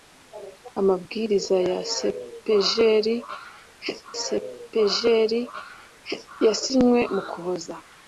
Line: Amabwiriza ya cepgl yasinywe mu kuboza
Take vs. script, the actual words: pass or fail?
fail